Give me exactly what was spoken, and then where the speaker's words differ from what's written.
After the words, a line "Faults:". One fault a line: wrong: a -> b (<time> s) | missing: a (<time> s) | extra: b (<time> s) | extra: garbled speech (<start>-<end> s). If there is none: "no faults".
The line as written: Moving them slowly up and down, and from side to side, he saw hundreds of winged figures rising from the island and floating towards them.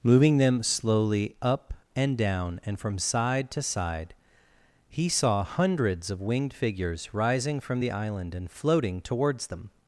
Moving them slowly up and down, and from side to side, he saw hundreds of winged figures rising from the island and floating towards them.
Faults:
no faults